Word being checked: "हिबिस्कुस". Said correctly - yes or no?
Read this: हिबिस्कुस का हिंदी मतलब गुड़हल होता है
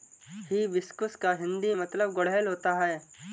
yes